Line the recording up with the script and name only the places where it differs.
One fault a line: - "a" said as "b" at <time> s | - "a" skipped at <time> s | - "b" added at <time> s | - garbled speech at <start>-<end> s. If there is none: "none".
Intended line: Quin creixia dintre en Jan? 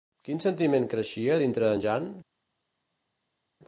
- "sentiment" added at 0.5 s